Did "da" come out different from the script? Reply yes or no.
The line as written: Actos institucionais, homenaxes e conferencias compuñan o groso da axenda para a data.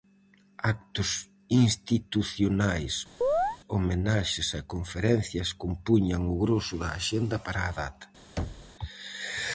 no